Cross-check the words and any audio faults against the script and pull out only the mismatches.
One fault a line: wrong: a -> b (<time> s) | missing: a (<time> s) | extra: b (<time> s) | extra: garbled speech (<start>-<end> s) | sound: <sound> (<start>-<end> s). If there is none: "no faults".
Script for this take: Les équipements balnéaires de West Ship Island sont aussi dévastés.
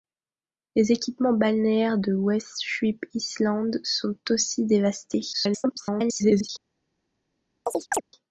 extra: garbled speech (5.3-6.5 s)
sound: chirp (7.7-8.0 s)